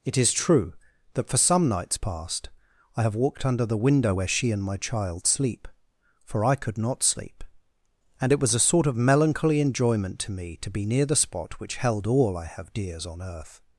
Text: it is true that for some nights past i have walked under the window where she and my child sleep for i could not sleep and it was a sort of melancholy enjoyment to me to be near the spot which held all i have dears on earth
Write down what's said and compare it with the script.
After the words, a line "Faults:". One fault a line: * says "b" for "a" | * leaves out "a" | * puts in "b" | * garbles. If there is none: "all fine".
it is true that for some nights past i have walked under the window where she and my child sleep for i could not sleep and it was a sort of melancholy enjoyment to me to be near the spot which held all i have dears on earth
Faults:
all fine